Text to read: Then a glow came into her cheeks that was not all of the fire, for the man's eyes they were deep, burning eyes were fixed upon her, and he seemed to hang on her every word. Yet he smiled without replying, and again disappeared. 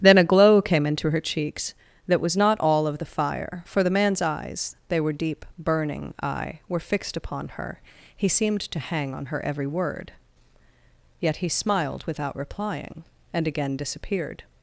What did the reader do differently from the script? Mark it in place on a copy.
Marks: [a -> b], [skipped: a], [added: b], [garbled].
Then a glow came into her cheeks that was not all of the fire, for the man's eyes they were deep, burning [eyes -> eye] were fixed upon her, [skipped: and] he seemed to hang on her every word. Yet he smiled without replying, and again disappeared.